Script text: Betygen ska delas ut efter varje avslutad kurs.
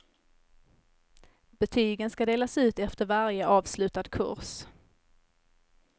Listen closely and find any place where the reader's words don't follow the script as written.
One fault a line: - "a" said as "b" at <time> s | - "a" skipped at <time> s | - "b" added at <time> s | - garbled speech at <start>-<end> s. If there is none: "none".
none